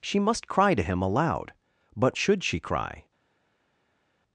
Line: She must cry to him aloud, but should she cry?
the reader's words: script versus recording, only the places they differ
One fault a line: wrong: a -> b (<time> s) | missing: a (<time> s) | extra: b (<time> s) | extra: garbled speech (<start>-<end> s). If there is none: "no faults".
no faults